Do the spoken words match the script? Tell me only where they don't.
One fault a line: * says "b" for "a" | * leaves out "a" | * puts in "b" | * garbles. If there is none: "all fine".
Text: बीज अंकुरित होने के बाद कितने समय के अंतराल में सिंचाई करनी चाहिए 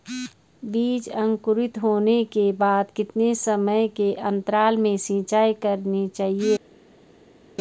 all fine